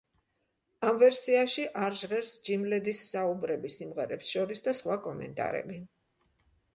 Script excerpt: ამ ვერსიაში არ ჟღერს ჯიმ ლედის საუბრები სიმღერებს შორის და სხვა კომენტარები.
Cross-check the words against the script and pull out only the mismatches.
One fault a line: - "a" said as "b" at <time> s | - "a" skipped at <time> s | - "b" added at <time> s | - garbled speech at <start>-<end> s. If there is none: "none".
none